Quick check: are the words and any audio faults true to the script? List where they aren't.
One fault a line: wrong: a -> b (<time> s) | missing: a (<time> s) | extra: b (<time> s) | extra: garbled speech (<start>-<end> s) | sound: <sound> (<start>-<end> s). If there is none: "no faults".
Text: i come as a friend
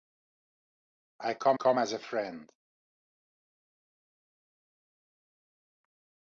extra: come (1.5 s)